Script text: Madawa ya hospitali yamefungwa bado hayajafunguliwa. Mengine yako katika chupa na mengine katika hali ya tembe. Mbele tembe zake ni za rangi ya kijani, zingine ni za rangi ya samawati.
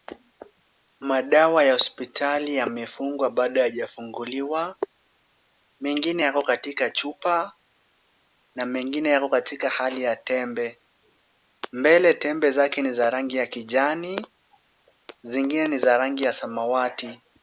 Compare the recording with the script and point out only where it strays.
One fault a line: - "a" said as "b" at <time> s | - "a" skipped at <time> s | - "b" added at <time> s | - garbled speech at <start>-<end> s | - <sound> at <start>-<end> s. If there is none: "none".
- "yako" added at 9.1 s